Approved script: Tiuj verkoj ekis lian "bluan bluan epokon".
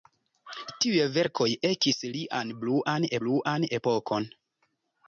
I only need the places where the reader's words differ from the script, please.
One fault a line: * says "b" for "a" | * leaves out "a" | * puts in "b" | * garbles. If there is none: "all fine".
all fine